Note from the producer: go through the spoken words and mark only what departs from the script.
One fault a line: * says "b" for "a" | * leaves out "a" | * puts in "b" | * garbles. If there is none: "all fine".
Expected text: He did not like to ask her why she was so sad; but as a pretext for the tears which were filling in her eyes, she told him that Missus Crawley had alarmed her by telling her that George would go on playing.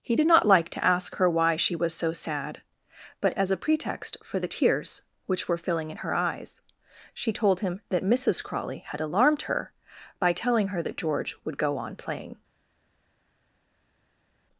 all fine